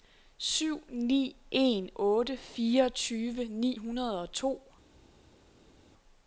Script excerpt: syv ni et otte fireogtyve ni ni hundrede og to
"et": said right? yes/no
no